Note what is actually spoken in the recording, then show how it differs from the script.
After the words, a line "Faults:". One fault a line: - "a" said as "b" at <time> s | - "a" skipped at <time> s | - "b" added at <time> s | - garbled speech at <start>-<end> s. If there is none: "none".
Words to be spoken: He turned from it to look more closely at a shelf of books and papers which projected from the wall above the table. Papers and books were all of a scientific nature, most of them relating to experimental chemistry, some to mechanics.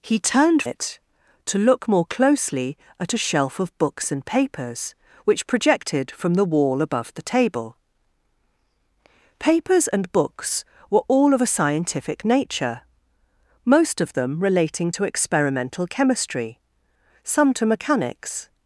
He turned it to look more closely at a shelf of books and papers which projected from the wall above the table. Papers and books were all of a scientific nature, most of them relating to experimental chemistry, some to mechanics.
Faults:
- "from" skipped at 0.6 s